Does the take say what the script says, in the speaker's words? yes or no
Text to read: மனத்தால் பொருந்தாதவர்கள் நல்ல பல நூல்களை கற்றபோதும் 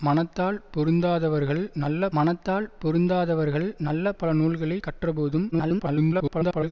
no